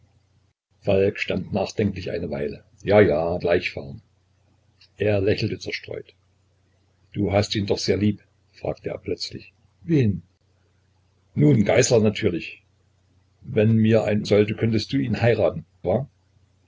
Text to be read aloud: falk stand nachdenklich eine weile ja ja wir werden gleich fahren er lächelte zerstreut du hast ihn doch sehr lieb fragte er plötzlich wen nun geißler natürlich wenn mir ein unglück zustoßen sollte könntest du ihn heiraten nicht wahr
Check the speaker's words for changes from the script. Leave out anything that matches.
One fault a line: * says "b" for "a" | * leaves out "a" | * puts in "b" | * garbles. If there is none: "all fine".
* leaves out "wir werden"
* leaves out "unglück zustoßen"
* leaves out "nicht"